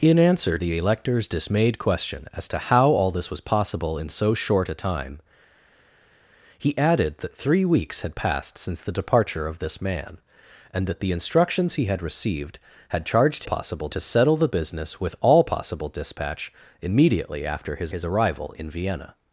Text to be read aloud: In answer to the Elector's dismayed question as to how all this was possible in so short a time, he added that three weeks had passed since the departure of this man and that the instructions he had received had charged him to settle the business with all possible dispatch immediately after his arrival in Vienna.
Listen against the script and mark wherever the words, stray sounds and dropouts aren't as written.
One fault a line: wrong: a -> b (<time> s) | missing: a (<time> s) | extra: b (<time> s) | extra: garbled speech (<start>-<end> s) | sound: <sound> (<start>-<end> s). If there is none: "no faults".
missing: to (0.6 s)
wrong: him -> possible (13.4 s)
extra: his (17.9 s)